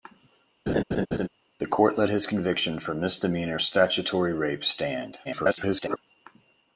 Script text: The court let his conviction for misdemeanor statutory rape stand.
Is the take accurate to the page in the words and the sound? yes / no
no